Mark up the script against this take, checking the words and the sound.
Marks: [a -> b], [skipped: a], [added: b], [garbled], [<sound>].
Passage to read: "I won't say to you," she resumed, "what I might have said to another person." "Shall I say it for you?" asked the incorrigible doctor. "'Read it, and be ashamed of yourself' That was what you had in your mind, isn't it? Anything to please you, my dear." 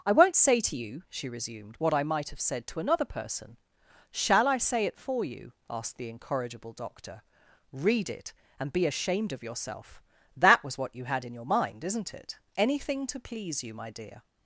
"I won't say to you," she resumed, "what I might have said to another person." "Shall I say it for you?" asked the incorrigible doctor. "'Read it, and be ashamed of yourself' That was what you had in your mind, isn't it? Anything to please you, my dear."